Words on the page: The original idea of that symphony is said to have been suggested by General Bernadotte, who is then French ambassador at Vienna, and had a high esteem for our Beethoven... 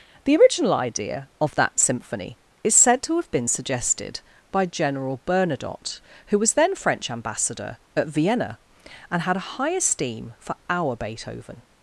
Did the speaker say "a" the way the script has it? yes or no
yes